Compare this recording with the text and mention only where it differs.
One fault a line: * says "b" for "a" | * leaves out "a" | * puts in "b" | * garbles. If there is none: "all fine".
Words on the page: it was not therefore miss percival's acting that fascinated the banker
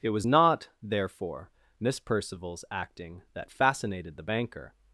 all fine